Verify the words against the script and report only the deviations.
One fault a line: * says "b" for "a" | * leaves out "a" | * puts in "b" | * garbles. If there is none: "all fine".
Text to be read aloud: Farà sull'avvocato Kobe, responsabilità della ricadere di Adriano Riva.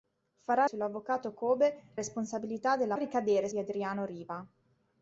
all fine